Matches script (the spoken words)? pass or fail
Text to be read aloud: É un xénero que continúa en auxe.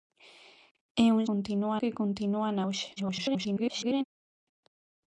fail